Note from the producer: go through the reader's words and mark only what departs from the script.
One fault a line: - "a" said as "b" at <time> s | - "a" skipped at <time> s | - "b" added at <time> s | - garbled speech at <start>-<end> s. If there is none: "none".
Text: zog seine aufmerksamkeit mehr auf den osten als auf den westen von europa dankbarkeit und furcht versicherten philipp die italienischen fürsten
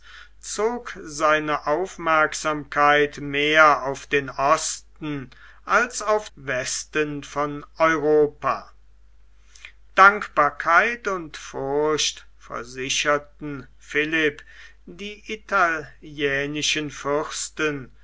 - "den" skipped at 6.3 s